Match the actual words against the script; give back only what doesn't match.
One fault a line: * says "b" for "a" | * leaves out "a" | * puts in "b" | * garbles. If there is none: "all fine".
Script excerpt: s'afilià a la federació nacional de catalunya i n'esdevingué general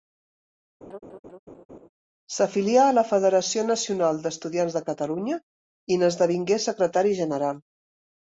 * puts in "d'estudiants"
* puts in "secretari"